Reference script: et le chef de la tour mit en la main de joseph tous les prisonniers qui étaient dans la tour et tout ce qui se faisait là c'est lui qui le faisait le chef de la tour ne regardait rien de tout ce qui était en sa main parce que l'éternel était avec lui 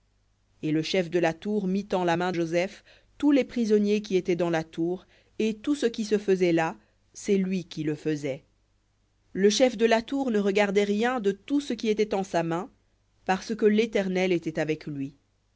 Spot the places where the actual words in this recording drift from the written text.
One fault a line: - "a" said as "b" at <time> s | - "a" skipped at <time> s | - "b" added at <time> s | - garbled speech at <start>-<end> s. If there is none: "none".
- "de" skipped at 2.3 s